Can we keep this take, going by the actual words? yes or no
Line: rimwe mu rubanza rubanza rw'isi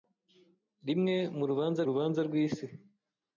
yes